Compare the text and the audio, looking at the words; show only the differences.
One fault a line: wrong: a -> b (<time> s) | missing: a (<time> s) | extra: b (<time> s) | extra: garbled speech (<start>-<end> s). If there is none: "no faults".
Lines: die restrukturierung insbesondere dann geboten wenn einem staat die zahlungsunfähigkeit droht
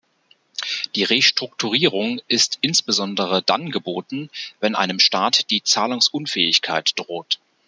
extra: ist (2.3 s)